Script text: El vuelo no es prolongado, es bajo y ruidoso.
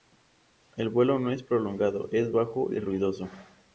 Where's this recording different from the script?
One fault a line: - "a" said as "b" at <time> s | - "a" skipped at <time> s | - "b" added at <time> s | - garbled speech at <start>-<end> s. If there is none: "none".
none